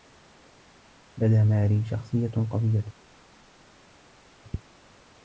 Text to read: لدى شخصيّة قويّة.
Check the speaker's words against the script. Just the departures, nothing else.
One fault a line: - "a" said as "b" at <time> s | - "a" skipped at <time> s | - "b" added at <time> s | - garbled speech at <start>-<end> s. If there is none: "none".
- "ماري" added at 1.4 s